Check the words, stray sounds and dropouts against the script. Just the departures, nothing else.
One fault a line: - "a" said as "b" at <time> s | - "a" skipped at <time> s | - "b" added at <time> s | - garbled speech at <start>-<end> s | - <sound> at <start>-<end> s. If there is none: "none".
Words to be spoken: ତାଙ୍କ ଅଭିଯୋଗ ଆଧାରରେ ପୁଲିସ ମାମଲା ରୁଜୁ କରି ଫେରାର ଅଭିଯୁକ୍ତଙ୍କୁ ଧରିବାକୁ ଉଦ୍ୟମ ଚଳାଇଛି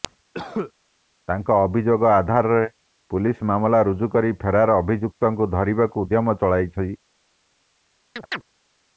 - cough at 0.3-0.7 s
- chirp at 8.2-8.4 s